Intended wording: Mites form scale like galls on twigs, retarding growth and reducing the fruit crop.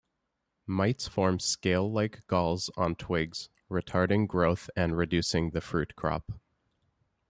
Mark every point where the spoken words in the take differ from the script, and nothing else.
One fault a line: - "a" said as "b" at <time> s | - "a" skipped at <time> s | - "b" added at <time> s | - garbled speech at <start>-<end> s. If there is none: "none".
none